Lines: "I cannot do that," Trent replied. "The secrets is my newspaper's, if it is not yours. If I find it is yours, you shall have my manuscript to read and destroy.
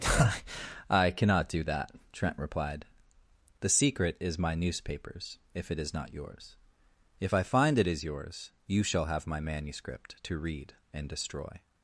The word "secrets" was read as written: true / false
false